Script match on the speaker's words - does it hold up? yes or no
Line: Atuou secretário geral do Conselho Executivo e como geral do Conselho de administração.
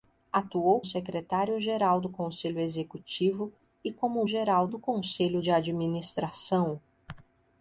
yes